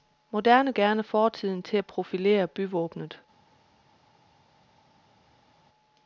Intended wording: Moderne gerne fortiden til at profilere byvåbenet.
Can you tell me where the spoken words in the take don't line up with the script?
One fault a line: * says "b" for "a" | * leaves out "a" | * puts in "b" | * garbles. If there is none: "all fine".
all fine